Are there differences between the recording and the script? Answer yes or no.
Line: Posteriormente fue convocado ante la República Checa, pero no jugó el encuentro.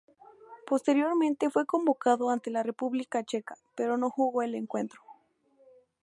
no